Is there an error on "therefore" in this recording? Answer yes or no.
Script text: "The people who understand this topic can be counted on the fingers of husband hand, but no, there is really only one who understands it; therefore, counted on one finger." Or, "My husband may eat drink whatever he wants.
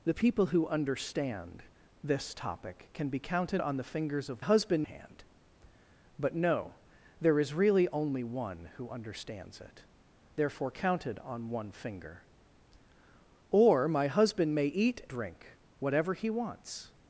no